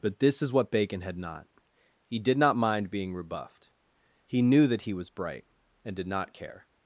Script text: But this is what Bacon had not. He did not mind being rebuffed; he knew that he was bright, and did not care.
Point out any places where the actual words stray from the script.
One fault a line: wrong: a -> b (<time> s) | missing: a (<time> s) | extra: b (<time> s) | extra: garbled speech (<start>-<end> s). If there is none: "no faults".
no faults